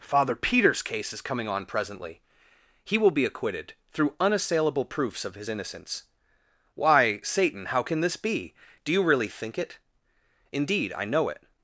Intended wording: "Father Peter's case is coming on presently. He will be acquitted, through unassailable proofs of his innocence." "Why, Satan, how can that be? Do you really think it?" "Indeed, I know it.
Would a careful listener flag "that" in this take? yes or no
yes